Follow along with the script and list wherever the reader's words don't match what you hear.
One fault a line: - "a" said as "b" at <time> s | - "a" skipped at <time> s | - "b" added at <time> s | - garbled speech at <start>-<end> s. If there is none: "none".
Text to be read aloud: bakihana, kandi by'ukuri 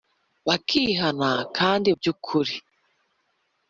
none